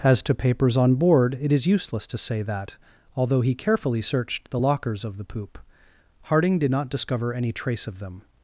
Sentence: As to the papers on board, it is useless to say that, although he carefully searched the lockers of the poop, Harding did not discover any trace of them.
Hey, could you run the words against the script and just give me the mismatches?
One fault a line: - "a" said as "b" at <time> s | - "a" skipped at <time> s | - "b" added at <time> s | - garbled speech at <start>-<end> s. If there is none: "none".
- "the" skipped at 0.3 s